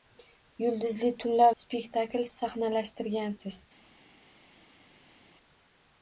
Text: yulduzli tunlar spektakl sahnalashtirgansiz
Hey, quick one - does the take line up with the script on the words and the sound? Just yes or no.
yes